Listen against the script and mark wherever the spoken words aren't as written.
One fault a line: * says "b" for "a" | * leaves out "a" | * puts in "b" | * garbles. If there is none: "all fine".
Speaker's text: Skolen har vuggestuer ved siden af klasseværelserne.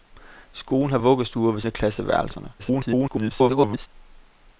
* leaves out "siden"
* garbles